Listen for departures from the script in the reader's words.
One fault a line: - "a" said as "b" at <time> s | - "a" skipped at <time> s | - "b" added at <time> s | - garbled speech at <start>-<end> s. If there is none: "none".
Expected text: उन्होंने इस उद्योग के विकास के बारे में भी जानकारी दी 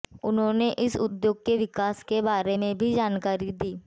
none